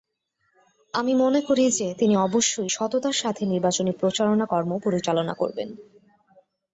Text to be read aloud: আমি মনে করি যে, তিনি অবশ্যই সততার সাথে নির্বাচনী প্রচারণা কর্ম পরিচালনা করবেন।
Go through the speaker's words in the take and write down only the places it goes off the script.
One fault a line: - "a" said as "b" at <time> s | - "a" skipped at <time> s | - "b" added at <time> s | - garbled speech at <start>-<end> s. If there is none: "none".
none